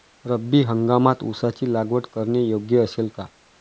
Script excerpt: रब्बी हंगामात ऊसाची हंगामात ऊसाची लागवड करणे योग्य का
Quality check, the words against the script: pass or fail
fail